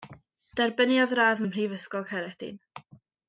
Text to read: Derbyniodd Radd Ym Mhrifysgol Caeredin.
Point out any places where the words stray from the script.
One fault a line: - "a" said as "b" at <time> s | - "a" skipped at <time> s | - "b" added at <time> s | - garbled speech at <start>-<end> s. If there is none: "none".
none